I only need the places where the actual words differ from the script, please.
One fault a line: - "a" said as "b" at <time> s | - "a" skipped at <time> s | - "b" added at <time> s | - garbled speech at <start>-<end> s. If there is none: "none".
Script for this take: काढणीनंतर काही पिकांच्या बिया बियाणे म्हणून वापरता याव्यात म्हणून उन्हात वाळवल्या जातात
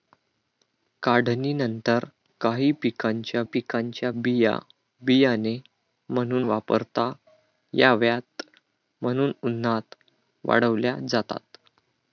- "पिकांच्या" added at 3.4 s